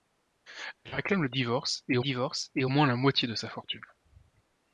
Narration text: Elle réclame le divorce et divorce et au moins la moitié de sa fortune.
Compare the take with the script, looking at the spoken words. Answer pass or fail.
pass